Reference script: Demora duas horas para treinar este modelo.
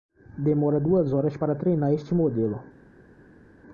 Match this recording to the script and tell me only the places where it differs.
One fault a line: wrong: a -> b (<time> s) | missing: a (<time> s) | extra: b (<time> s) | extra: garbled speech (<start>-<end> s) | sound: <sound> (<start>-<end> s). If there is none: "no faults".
no faults